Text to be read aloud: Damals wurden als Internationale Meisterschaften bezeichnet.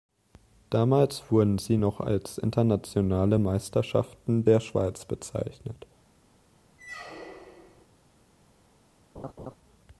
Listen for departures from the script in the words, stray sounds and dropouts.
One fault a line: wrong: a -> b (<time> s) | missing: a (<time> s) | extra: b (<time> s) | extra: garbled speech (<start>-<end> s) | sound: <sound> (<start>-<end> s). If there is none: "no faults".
extra: sie noch (1.6 s)
extra: der Schweiz (4.4 s)
sound: squeak (6.8-7.9 s)
sound: laugh (9.1-9.6 s)